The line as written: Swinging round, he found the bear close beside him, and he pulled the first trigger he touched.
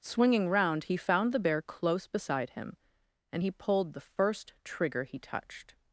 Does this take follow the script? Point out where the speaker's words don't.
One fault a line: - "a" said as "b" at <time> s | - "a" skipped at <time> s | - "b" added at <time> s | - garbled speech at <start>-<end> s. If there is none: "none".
none